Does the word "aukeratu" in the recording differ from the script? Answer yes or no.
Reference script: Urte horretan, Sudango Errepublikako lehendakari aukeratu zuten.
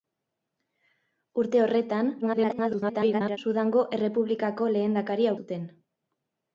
yes